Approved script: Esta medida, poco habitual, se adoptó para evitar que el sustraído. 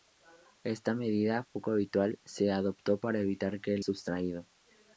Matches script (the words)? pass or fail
pass